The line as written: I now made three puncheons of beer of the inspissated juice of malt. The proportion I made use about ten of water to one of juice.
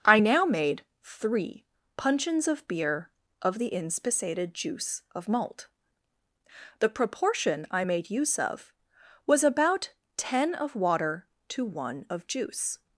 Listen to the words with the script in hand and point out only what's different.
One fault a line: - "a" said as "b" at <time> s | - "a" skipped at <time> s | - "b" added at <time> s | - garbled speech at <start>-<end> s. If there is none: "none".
- "of was" added at 8.4 s